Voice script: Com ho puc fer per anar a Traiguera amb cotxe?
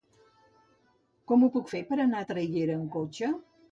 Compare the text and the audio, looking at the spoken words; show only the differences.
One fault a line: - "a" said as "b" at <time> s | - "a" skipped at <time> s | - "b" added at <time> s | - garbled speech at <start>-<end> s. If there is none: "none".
none